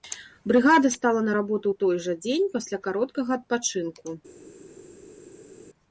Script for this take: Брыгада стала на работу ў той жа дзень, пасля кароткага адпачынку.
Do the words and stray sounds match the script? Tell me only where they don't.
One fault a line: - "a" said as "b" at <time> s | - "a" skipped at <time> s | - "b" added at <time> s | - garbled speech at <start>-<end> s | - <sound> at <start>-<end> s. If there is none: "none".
none